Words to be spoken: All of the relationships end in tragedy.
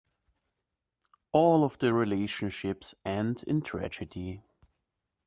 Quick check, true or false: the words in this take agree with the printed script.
true